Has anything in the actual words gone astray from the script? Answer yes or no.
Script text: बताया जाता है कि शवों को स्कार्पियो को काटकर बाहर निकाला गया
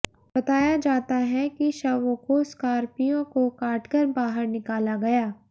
no